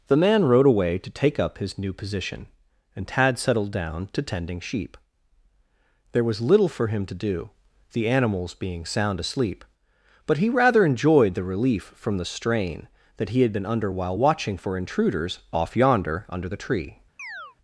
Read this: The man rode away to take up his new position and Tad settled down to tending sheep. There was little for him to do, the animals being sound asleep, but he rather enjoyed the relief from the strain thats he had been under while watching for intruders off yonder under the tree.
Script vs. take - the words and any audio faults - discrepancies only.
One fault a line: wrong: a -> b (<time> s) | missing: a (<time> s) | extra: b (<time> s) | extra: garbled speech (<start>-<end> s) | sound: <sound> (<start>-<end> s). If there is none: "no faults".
wrong: thats -> that (13.2 s)
sound: chirp (17.2-17.6 s)